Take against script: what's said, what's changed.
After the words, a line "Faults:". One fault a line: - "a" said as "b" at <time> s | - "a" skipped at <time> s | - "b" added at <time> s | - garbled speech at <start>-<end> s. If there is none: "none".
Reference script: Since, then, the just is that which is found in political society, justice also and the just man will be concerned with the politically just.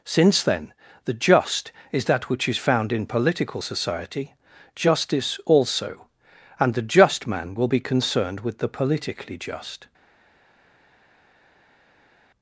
Since, then, the just is that which is found in political society, justice also and the just man will be concerned with the politically just.
Faults:
none